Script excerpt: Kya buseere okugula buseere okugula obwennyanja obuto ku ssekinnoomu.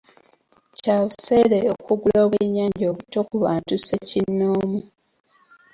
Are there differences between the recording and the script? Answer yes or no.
yes